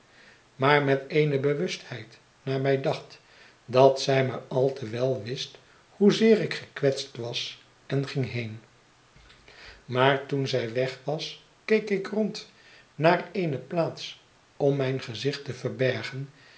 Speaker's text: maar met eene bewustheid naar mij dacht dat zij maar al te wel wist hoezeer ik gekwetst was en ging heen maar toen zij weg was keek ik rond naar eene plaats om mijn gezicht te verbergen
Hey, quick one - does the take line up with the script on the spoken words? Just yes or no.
yes